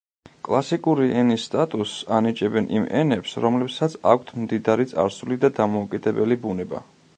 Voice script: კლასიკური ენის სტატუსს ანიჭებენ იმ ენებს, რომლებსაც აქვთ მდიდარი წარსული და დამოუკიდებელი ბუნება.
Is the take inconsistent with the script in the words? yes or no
no